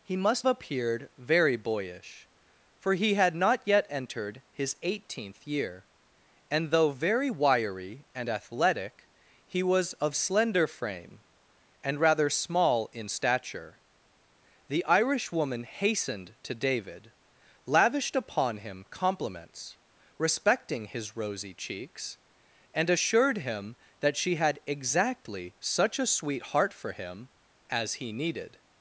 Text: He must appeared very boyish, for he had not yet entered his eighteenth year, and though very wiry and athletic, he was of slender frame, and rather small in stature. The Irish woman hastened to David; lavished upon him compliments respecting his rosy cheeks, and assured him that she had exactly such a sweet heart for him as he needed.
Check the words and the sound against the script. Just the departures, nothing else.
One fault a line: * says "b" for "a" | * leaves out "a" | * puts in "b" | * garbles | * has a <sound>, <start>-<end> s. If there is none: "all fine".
all fine